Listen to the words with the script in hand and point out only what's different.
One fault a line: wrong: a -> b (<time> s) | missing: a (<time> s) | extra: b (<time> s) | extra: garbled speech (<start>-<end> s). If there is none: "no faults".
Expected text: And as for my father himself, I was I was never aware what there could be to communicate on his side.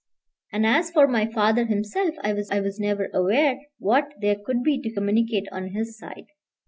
no faults